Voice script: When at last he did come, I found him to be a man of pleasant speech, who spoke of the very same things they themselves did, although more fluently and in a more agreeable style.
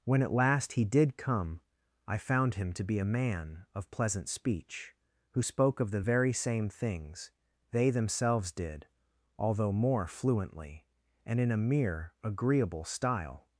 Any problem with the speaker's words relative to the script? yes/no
yes